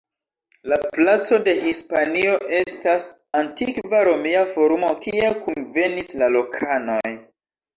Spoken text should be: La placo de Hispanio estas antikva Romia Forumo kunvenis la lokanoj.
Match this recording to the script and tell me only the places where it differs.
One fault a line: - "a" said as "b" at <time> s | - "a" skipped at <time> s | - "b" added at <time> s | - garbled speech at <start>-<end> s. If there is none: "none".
- "kie" added at 5.1 s